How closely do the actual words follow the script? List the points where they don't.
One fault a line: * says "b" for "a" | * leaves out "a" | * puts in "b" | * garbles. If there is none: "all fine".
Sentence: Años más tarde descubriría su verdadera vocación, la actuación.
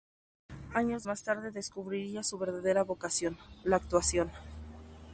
all fine